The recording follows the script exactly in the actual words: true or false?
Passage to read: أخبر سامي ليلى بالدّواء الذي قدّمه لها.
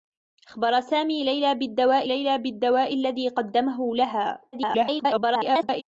false